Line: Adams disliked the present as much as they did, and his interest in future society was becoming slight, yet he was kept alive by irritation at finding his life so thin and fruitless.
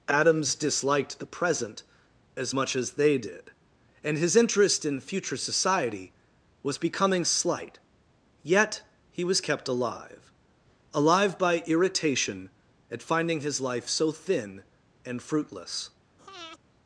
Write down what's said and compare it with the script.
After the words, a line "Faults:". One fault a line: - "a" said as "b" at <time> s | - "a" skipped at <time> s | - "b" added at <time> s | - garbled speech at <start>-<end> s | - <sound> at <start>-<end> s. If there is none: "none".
Adams disliked the present as much as they did, and his interest in future society was becoming slight, yet he was kept alive alive by irritation at finding his life so thin and fruitless.
Faults:
- "alive" added at 10.9 s
- breath at 16.2-16.6 s